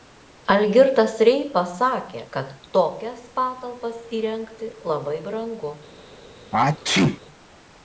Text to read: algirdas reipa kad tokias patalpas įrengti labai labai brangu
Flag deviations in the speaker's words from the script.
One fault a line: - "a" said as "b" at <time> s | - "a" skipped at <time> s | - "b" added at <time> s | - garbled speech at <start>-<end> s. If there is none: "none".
- "sakė" added at 1.7 s
- "labai" skipped at 5.2 s